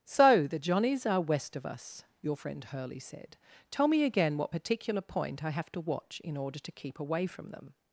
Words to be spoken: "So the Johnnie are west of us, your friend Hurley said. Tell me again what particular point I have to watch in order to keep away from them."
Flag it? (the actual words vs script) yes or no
yes